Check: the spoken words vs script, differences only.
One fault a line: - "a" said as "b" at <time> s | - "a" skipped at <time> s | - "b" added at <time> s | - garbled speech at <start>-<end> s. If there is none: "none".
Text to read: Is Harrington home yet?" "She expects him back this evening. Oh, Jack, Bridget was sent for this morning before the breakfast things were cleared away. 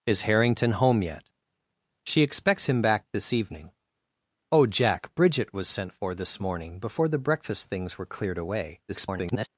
- garbled speech at 8.9-9.5 s